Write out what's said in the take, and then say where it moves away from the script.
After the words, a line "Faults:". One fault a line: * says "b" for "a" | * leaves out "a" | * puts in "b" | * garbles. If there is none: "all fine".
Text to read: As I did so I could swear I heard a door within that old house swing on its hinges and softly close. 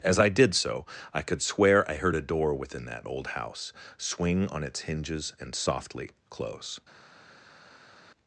As I did so I could swear I heard a door within that old house swing on its hinges and softly close.
Faults:
all fine